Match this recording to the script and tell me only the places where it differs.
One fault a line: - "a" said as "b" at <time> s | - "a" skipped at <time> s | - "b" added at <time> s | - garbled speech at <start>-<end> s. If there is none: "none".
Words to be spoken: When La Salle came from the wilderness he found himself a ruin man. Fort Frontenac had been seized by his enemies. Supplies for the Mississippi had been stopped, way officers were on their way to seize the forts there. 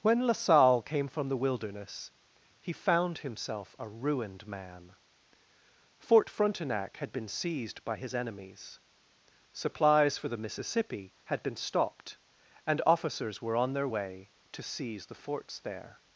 - "ruin" said as "ruined" at 3.9 s
- "way" said as "and" at 12.7 s